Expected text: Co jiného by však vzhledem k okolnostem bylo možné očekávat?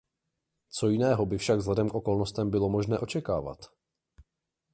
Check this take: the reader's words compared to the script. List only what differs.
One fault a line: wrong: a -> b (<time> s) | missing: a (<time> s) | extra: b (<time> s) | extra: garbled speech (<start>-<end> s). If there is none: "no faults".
no faults